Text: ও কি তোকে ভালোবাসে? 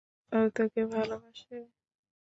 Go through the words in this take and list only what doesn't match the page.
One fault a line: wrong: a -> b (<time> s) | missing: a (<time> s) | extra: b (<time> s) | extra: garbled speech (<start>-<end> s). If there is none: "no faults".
missing: কি (0.4 s)